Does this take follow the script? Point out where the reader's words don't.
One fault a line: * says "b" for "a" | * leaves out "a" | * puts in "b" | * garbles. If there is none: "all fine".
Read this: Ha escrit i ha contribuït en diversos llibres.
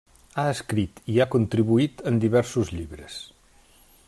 all fine